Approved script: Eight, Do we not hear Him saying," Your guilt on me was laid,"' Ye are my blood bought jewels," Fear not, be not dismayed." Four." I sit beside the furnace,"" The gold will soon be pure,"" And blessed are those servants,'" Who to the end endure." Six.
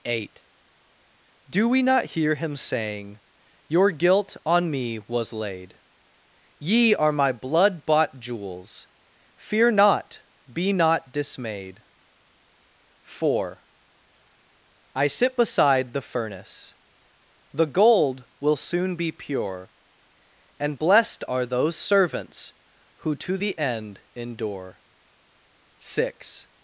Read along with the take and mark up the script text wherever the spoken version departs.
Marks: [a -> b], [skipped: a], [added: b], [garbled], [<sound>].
Eight, Do we not hear Him saying," Your guilt on me was laid,"' Ye are my blood bought jewels," Fear not, be not dismayed." Four." I sit beside the furnace,"" The gold will soon be pure,"" And blessed are those servants,'" Who to the end endure." Six.